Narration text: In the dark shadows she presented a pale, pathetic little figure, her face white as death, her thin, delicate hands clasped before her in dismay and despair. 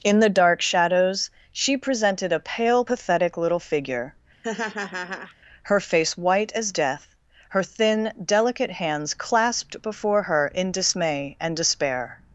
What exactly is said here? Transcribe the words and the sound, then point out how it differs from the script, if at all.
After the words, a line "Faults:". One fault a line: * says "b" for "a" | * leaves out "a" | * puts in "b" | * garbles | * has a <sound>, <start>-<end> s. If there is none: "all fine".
In the dark shadows she presented a pale, pathetic little figure, her face white as death, her thin, delicate hands clasped before her in dismay and despair.
Faults:
* has a laugh, 4.4-5.3 s